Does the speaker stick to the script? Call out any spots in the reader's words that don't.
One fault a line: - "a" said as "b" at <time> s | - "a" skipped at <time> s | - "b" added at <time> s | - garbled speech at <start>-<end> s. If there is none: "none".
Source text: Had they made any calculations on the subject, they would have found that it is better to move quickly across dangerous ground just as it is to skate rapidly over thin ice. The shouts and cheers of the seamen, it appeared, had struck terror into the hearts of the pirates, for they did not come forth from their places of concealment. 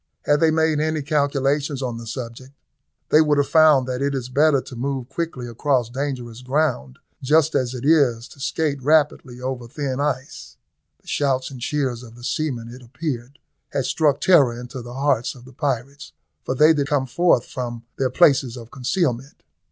- "not" skipped at 16.9 s